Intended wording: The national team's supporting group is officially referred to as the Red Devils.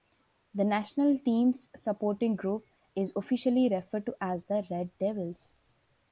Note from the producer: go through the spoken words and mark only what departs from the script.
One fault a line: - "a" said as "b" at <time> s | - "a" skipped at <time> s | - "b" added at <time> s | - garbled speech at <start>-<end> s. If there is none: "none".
none